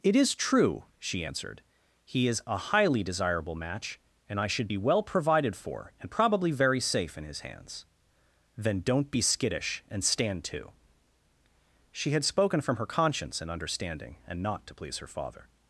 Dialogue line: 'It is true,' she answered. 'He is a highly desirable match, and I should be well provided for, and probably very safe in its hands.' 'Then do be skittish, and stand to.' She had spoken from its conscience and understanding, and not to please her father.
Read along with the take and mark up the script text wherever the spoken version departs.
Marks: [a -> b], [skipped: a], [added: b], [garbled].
'It is true,' she answered. 'He is a highly desirable match, and I should be well provided for, and probably very safe in [its -> his] hands.' 'Then [do -> don't] be skittish, and stand to.' She had spoken from [its -> her] conscience and understanding, and not to please her father.